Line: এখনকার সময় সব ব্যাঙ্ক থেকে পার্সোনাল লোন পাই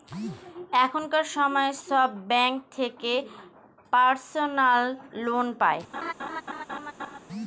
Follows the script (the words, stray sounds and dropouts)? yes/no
no